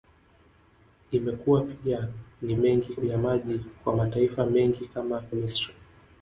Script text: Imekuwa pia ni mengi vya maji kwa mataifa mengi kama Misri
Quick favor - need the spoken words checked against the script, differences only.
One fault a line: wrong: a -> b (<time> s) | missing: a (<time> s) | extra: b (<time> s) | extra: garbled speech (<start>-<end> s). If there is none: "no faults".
no faults